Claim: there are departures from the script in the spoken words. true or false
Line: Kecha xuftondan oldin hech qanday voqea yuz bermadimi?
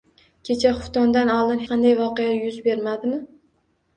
true